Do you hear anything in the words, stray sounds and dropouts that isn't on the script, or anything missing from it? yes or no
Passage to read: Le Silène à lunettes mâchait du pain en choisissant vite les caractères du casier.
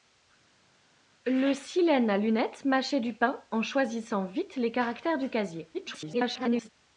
yes